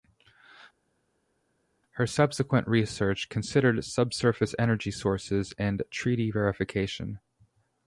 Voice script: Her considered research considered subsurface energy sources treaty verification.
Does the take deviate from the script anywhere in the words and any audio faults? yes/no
yes